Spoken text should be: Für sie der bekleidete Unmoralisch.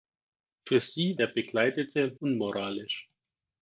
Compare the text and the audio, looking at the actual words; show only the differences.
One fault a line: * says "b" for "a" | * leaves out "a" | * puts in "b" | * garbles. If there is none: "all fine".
all fine